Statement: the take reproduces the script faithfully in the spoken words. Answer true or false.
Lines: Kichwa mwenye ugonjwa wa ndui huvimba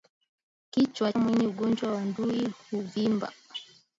true